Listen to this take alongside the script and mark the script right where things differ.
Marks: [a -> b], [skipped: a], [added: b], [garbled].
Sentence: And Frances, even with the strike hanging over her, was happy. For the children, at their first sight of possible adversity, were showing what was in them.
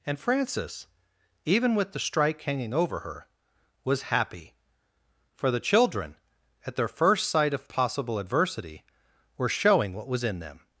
And Frances, even with the strike hanging over her, was happy. For the children, at their first sight of possible adversity, were showing what was in them.